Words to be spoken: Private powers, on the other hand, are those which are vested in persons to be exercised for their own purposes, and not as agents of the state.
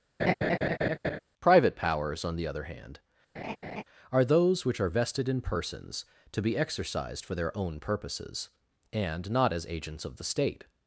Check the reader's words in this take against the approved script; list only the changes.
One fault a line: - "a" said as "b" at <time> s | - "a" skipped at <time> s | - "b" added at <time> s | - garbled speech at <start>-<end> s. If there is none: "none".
none